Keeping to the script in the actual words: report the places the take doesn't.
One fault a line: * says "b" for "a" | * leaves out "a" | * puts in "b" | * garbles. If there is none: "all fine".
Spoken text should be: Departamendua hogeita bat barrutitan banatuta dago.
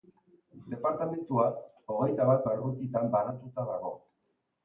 all fine